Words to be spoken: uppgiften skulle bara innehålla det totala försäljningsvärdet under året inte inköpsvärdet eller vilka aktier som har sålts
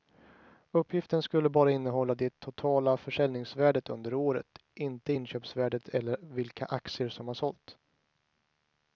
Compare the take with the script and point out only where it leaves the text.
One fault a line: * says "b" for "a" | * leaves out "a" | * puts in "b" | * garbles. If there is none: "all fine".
all fine